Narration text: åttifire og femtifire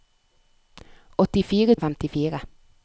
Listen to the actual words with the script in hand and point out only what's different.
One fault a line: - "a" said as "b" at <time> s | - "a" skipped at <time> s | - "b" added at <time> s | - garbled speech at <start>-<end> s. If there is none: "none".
none